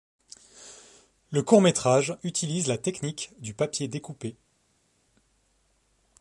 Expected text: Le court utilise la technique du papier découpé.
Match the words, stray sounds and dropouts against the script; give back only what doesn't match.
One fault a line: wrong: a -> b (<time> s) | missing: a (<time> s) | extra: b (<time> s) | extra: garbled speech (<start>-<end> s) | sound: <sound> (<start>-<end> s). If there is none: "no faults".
extra: métrage (1.6 s)